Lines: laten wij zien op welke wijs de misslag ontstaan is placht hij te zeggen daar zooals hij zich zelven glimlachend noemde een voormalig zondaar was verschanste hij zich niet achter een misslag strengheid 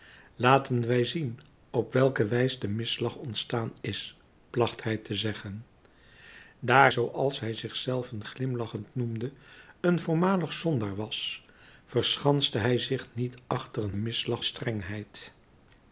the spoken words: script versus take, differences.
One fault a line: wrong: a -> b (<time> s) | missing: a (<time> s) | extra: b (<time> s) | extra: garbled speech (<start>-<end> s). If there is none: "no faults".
no faults